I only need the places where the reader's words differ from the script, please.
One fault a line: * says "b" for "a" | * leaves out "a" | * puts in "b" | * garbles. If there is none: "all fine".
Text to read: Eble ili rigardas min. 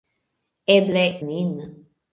* leaves out "ili rigardas"